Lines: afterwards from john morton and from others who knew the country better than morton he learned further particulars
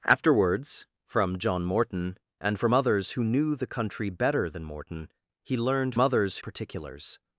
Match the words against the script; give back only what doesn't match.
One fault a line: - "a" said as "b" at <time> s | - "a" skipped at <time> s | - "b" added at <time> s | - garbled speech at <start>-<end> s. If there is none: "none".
- "further" said as "others" at 6.0 s